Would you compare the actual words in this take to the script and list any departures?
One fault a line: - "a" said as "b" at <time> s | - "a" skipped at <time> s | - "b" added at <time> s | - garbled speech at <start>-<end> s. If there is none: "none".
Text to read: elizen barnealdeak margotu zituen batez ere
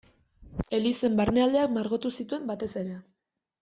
none